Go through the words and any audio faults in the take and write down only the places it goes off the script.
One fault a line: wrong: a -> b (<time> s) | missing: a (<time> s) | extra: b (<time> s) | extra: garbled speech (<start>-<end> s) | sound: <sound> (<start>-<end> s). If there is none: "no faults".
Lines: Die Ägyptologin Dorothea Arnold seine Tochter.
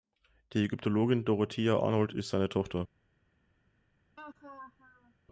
extra: ist (2.1 s)
sound: laugh (4.2-5.1 s)